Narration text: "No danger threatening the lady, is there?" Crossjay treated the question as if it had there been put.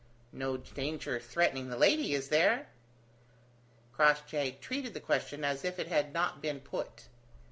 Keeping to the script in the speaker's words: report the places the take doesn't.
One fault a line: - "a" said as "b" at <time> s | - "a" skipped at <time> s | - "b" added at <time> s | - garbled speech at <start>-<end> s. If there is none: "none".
- "there" said as "not" at 6.1 s